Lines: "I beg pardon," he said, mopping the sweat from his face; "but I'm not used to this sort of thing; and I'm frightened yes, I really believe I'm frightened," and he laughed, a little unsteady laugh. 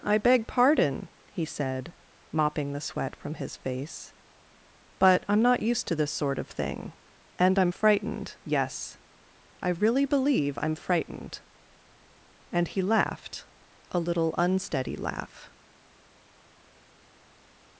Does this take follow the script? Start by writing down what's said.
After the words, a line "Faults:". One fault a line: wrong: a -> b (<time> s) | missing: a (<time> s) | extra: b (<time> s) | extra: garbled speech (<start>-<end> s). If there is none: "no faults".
"I beg pardon," he said, mopping the sweat from his face; "but I'm not used to this sort of thing; and I'm frightened yes, I really believe I'm frightened," and he laughed, a little unsteady laugh.
Faults:
no faults